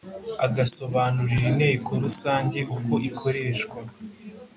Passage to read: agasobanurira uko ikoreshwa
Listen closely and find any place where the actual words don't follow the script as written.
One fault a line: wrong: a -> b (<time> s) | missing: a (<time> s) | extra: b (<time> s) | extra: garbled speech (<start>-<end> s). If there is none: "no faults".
extra: inteko rusange (1.5 s)